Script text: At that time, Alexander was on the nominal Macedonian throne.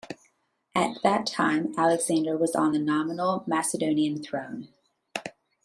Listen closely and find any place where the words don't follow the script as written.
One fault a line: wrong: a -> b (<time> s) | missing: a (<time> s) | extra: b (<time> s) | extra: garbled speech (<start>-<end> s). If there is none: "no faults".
no faults